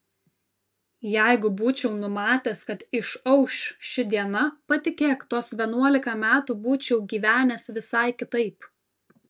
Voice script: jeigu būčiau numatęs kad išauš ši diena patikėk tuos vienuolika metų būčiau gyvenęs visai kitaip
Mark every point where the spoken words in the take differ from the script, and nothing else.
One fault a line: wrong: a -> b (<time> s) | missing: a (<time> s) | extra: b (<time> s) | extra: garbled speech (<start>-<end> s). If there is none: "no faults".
no faults